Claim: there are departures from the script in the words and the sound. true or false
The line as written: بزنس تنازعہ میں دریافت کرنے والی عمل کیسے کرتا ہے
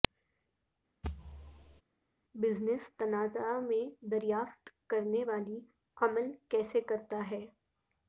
true